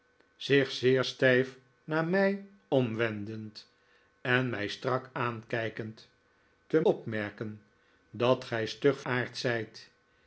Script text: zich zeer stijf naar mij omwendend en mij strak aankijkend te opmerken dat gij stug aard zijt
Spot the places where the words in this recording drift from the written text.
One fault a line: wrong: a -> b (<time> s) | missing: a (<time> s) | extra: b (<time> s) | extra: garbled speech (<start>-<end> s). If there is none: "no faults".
no faults